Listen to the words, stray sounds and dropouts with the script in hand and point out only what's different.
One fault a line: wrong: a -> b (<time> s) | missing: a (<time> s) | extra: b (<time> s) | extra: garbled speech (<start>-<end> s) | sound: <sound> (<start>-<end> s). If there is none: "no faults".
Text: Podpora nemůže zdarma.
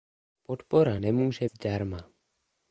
no faults